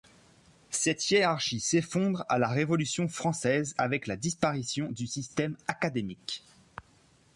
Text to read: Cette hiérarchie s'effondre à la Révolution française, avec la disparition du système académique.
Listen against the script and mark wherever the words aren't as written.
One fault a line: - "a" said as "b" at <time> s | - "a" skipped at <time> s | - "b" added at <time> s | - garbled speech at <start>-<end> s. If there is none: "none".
none